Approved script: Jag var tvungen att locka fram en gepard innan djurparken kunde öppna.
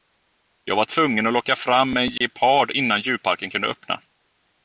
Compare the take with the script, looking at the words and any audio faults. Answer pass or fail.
fail